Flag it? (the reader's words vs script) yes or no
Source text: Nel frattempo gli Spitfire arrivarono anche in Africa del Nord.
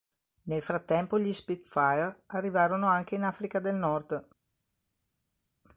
no